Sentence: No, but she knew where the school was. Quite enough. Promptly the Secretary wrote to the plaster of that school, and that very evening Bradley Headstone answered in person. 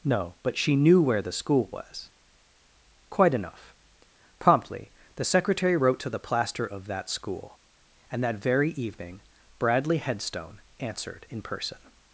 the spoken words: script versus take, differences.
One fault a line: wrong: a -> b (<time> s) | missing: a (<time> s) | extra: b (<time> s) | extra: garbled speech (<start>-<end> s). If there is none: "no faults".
no faults